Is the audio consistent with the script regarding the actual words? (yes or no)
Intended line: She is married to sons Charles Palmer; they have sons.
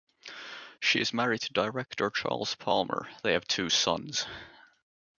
no